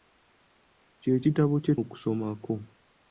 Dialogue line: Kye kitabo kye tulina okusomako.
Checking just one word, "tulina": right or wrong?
wrong